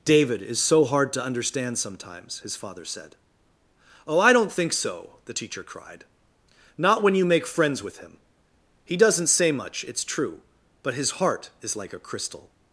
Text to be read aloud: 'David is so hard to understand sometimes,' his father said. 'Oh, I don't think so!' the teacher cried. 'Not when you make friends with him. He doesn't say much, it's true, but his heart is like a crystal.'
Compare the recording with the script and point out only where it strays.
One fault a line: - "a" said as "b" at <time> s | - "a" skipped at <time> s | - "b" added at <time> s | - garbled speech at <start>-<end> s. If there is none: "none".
none